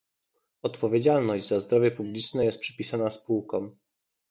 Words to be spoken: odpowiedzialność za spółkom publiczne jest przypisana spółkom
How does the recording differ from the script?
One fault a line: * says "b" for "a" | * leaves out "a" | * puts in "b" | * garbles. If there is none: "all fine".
* says "zdrowie" for "spółkom"